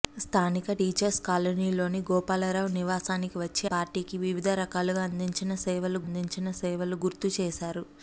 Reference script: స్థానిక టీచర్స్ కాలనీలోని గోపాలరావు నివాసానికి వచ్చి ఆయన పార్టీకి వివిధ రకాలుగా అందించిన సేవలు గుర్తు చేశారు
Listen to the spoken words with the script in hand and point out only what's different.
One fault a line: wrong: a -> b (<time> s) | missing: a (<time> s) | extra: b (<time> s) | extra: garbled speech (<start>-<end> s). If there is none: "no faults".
missing: ఆయన (3.7 s)
extra: అందించిన సేవలు (6.0 s)